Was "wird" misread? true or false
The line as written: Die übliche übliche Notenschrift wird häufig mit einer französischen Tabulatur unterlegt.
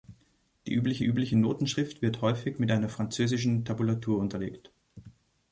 false